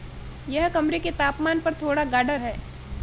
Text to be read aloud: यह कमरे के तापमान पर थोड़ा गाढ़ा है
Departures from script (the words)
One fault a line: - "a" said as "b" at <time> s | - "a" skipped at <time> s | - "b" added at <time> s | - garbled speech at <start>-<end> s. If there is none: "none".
none